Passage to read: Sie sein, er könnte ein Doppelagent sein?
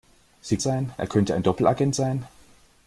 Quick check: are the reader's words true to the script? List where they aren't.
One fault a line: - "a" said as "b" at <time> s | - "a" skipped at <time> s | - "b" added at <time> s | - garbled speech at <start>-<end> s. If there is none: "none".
none